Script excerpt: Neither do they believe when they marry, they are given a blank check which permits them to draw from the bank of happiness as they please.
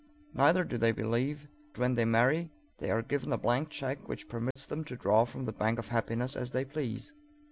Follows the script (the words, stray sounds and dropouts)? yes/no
no